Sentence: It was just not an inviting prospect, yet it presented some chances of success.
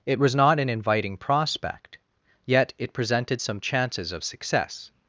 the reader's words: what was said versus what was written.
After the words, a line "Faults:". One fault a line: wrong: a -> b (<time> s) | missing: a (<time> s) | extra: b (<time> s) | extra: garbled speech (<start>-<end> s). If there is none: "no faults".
It was not an inviting prospect, yet it presented some chances of success.
Faults:
missing: just (0.3 s)